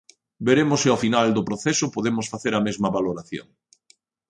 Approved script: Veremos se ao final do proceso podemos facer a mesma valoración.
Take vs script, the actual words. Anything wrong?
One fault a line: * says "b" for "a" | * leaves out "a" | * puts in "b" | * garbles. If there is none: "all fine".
all fine